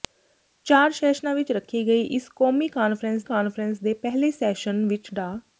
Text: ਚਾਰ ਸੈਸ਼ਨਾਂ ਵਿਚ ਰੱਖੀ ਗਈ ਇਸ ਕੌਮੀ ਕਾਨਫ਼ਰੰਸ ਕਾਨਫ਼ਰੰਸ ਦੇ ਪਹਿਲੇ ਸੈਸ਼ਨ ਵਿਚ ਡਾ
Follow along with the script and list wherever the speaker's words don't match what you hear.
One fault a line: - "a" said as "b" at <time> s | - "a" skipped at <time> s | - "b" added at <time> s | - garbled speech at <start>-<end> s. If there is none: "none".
none